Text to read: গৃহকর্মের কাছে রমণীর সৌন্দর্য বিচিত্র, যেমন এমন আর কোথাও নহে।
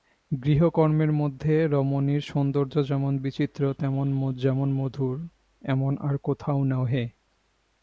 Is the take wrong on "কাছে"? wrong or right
wrong